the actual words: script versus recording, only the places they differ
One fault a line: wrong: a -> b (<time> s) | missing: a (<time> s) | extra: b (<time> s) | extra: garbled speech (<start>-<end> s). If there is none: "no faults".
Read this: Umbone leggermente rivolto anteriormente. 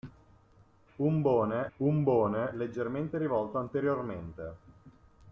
extra: umbone (1.8 s)